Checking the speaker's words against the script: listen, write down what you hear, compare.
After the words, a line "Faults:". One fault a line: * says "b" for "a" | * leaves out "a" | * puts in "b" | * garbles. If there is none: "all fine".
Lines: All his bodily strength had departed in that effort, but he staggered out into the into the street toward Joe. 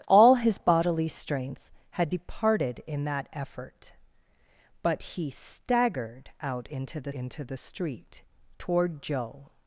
All his bodily strength had departed in that effort, but he staggered out into the into the street toward Joe.
Faults:
all fine